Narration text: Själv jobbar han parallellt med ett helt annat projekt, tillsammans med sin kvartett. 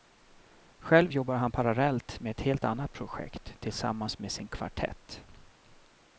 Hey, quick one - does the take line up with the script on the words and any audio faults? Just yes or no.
yes